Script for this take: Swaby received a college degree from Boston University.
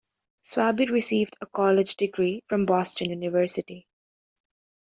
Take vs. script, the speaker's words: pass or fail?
pass